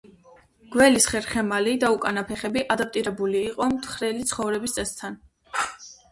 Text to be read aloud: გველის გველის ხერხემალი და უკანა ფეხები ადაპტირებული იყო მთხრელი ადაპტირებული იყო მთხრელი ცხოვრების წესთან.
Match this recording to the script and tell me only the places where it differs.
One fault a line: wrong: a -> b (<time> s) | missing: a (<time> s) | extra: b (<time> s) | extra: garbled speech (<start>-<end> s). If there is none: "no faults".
missing: გველის (1.1 s)
missing: ადაპტირებული იყო მთხრელი (4.3 s)